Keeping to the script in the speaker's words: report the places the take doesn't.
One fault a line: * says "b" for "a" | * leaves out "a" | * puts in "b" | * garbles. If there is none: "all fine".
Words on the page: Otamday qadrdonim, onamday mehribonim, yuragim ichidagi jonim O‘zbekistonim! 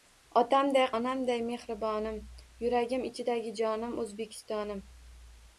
* leaves out "qadrdonim"